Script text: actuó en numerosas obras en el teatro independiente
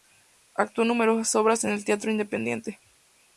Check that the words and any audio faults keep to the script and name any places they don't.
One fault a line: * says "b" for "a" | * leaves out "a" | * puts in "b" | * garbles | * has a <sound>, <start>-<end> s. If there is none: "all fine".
all fine